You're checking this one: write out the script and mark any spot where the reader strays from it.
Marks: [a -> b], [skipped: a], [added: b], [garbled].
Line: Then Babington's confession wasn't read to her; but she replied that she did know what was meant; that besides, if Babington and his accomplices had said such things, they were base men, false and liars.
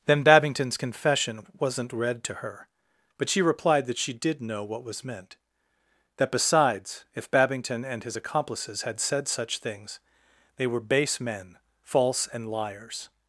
Then Babington's confession wasn't read to her; but she replied that she did know what was meant; that besides, if Babington and his accomplices had said such things, they were base men, false and liars.